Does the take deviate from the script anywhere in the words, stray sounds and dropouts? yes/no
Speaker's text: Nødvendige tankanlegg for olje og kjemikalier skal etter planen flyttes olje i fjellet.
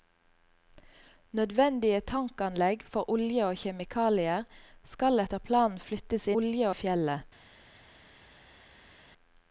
no